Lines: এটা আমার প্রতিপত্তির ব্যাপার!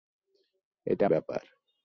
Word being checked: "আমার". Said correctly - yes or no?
no